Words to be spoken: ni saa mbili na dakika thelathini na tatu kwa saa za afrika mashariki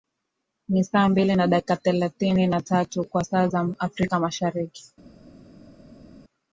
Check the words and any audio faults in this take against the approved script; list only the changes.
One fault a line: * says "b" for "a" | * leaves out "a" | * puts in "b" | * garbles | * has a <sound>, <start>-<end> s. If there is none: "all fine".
all fine